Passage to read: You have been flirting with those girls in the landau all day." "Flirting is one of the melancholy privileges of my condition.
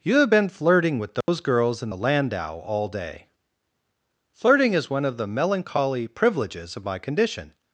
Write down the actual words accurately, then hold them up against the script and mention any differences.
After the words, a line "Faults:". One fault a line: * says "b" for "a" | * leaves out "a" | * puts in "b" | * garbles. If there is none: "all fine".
You have been flirting with those girls in the landau all day." "Flirting is one of the melancholy privileges of my condition.
Faults:
all fine